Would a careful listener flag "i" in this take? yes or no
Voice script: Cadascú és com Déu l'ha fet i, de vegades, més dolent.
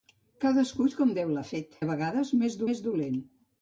yes